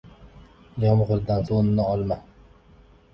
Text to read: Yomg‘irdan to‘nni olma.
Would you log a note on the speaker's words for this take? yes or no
no